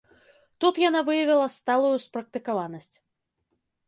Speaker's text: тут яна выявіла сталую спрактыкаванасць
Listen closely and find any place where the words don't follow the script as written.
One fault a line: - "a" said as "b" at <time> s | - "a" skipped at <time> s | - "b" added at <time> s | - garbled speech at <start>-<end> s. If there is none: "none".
none